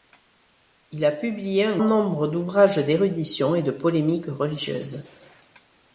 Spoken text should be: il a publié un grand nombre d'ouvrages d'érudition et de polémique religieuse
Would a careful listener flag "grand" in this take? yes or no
yes